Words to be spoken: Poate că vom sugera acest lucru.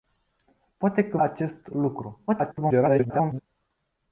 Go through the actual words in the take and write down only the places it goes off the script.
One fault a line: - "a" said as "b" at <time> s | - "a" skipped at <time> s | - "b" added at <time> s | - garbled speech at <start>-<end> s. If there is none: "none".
- "vom sugera" skipped at 1.2 s
- garbled speech at 2.3-3.4 s